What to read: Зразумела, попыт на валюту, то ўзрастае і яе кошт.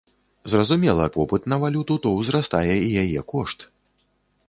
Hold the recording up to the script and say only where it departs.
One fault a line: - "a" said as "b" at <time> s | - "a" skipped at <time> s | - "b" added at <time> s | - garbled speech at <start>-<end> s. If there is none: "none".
none